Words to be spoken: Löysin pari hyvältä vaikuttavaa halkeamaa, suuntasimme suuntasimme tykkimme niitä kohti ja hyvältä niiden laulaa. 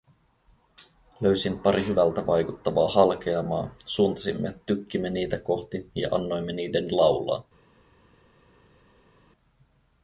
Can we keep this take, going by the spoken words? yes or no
no